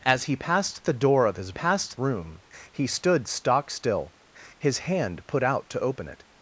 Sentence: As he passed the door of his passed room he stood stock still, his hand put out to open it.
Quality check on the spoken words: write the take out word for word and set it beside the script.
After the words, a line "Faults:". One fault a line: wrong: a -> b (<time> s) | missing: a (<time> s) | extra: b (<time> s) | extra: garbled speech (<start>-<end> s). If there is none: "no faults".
As he passed the door of his passed room he stood stock still, his hand put out to open it.
Faults:
no faults